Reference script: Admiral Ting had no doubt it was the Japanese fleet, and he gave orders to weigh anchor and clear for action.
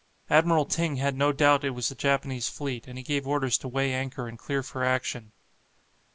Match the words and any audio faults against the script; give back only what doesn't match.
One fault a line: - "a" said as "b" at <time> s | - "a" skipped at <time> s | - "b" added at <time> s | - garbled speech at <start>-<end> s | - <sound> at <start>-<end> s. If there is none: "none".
none